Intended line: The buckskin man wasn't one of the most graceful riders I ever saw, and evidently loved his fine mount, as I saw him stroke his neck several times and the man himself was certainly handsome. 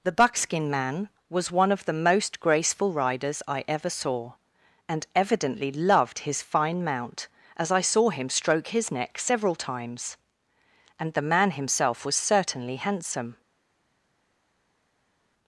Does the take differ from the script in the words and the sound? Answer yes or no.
yes